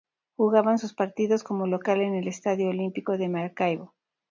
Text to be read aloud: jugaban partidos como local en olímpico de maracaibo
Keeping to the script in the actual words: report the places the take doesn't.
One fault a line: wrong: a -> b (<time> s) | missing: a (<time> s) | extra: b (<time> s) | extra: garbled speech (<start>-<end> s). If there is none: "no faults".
extra: sus (0.8 s)
extra: el estadio (2.1 s)